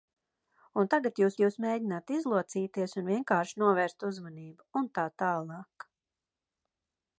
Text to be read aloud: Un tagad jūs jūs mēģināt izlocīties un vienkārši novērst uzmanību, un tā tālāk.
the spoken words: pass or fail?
pass